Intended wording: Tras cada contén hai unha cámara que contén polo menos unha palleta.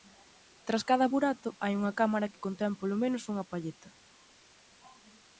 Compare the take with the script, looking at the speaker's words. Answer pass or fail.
fail